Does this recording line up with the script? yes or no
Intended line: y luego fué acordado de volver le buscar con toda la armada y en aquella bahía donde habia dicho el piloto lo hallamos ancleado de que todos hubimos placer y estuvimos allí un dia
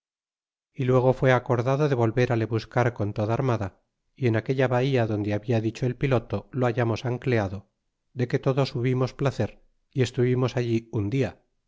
no